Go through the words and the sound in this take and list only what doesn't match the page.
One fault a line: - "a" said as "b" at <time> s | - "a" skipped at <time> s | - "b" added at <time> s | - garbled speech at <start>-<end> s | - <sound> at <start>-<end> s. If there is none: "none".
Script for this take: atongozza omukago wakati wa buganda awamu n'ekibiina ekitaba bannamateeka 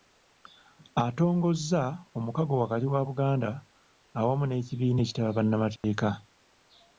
- dropout at 5.8-5.8 s